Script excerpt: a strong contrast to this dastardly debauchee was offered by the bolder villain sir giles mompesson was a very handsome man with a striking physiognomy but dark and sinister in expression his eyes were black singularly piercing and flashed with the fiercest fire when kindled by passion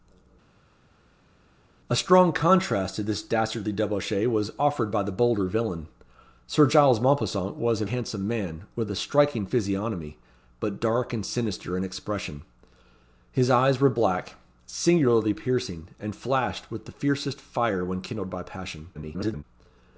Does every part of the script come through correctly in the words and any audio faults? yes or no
no